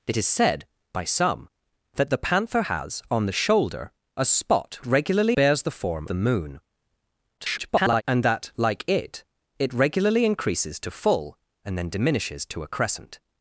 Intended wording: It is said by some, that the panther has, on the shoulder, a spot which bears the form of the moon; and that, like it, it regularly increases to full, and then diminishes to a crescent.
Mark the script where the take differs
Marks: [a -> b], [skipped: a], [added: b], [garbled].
It is said by some, that the panther has, on the shoulder, a spot [which -> regularly] bears the form [skipped: of] the moon; [garbled] and that, like it, it regularly increases to full, and then diminishes to a crescent.